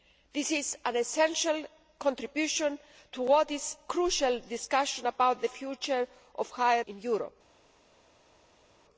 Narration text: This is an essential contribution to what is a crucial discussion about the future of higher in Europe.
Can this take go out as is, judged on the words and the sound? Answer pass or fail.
pass